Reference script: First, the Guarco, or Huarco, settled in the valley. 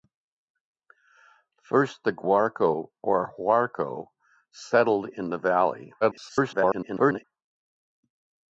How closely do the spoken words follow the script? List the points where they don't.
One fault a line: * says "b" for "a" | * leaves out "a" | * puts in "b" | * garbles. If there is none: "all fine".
* garbles